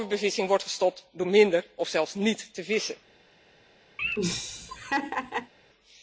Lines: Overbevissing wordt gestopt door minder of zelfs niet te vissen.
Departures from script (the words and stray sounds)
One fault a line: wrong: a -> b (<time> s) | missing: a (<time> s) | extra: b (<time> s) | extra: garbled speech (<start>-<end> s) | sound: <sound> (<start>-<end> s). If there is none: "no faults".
sound: laugh (4.0-5.5 s)